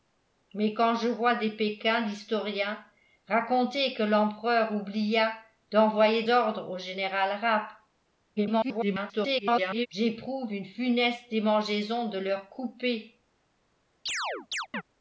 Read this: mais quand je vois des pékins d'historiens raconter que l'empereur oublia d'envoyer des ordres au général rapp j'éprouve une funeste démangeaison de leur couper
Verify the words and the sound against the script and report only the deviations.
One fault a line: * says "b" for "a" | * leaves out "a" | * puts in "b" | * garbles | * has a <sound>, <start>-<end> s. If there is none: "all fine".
* leaves out "des"
* garbles
* has a chirp, 14.1-14.8 s